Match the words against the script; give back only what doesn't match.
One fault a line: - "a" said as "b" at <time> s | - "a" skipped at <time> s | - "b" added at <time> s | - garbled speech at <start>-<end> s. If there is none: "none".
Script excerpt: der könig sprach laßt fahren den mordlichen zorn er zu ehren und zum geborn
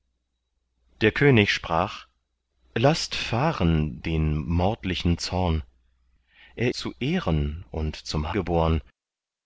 none